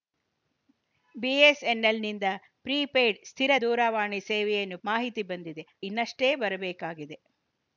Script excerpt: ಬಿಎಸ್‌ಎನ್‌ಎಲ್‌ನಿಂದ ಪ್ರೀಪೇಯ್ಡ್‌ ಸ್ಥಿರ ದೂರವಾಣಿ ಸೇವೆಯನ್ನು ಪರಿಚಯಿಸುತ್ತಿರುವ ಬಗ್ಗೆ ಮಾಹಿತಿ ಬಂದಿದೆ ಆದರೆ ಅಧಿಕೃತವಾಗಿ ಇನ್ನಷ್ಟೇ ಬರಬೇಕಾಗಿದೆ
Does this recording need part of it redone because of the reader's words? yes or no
yes